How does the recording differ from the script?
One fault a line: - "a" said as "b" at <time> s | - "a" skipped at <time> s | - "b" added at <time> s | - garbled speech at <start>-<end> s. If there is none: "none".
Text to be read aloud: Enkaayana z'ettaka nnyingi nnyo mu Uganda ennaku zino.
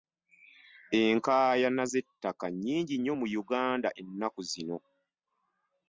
none